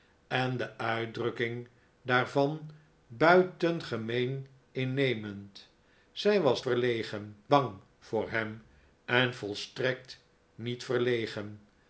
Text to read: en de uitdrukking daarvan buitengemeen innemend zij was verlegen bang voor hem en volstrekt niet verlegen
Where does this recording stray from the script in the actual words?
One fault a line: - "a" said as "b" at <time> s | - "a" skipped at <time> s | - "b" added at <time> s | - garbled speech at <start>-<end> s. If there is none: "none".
none